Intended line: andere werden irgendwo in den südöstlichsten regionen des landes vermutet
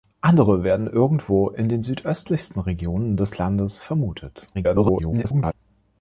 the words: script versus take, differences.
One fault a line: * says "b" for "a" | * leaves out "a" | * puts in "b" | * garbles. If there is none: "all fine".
* garbles